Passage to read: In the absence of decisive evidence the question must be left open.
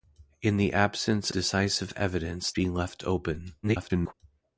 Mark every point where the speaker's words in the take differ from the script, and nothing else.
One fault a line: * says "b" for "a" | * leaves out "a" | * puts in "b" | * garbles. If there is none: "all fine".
* leaves out "of"
* leaves out "the question must"
* garbles